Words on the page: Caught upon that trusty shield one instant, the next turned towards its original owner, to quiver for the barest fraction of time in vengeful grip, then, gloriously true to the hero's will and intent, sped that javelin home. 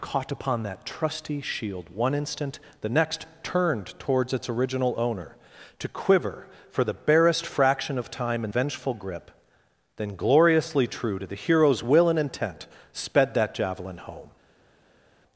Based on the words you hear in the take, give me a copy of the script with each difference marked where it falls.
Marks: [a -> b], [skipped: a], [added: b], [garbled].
Caught upon that trusty shield one instant, the next turned towards its original owner, to quiver for the barest fraction of time in vengeful grip, then, gloriously true to the hero's will and intent, sped that javelin home.